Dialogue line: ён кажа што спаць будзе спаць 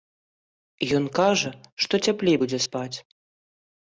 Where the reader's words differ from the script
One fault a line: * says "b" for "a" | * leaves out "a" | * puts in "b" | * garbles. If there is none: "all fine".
* says "цяплей" for "спаць"